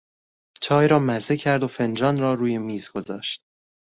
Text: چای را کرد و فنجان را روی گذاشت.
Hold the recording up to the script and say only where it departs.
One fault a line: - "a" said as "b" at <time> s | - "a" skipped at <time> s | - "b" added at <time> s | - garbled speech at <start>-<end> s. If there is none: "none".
- "مزه" added at 1.0 s
- "میز" added at 2.6 s